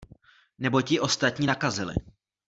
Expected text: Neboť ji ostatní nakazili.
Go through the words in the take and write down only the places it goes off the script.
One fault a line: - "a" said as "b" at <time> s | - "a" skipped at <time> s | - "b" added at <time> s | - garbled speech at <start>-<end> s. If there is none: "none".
none